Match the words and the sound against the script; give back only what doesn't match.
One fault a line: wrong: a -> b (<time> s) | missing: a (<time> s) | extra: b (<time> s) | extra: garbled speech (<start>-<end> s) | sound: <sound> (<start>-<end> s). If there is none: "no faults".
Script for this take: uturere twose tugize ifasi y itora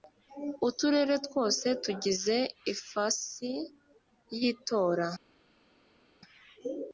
no faults